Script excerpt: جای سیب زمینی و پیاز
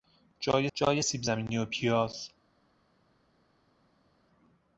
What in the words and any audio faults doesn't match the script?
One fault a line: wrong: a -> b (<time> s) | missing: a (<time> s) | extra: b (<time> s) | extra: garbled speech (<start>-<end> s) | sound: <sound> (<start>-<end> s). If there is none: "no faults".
extra: جای (0.7 s)